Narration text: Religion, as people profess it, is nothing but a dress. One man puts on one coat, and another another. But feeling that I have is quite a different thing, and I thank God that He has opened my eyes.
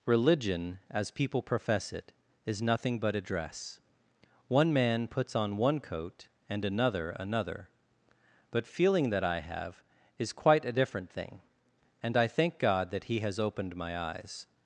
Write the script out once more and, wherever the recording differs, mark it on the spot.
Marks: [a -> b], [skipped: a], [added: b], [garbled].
Religion, as people profess it, is nothing but a dress. One man puts on one coat, and another another. But feeling that I have is quite a different thing, and I thank God that He has opened my eyes.